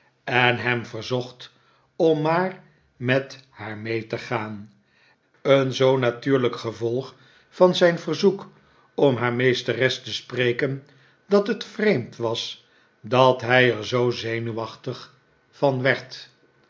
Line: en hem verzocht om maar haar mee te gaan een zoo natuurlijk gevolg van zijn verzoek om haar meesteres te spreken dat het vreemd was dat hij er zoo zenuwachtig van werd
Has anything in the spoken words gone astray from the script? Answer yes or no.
yes